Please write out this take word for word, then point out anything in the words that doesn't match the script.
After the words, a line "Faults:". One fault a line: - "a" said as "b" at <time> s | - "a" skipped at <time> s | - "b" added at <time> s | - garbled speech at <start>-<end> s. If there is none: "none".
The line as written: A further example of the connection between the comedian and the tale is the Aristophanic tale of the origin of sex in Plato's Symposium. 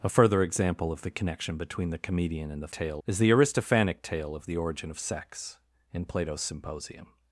A further example of the connection between the comedian and the tale is the Aristophanic tale of the origin of sex in Plato's Symposium.
Faults:
none